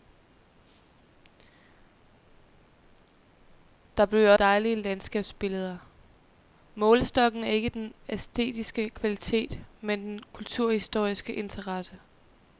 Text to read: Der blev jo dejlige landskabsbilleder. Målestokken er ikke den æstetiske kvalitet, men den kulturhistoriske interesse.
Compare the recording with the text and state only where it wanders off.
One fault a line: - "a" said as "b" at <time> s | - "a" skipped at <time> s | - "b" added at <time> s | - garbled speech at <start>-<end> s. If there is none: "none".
none